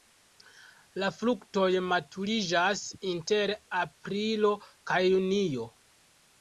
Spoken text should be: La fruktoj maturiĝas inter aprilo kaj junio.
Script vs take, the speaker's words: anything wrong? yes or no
no